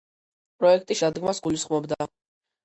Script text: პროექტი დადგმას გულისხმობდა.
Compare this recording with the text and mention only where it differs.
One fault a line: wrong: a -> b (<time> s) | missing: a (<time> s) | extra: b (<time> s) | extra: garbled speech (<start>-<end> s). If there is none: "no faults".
no faults